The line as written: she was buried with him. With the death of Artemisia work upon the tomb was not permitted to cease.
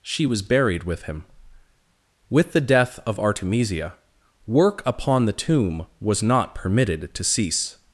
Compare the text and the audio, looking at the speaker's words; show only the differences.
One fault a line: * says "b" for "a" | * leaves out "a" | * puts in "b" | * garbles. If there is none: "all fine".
all fine